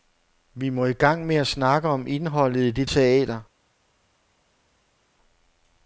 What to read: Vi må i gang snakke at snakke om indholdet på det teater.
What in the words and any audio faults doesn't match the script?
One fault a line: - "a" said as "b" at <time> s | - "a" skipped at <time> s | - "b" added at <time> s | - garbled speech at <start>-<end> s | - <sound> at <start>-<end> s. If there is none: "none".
- "snakke" said as "med" at 1.2 s
- "på" said as "i" at 2.6 s